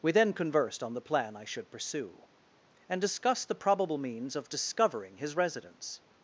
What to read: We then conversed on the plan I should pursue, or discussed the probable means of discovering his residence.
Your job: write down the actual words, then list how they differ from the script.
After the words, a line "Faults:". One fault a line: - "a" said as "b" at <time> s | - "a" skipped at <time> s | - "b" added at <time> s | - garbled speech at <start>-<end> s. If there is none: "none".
We then conversed on the plan I should pursue, and discussed the probable means of discovering his residence.
Faults:
- "or" said as "and" at 2.9 s